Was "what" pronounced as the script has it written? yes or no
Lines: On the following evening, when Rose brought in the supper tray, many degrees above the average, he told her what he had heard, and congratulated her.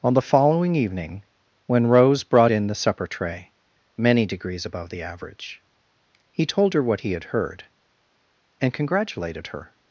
yes